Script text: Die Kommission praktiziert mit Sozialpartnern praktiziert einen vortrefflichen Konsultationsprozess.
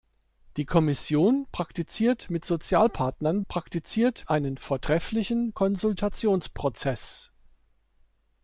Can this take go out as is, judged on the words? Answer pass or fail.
pass